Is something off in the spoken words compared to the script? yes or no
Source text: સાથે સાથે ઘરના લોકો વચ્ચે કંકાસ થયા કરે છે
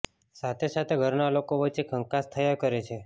no